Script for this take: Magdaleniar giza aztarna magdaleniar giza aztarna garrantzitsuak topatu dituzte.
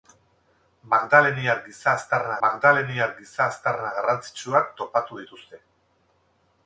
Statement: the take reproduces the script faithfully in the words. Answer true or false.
true